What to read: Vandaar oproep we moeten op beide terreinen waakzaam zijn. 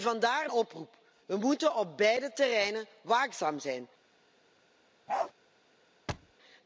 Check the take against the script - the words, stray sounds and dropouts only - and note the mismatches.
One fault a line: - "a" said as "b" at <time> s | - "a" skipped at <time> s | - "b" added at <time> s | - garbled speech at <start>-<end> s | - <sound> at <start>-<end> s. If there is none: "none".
- bark at 5.1-5.3 s
- thud at 6.1-6.3 s